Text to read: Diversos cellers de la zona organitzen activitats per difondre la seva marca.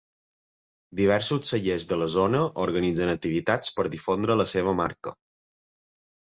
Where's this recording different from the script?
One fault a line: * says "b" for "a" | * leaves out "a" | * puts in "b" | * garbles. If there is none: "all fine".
all fine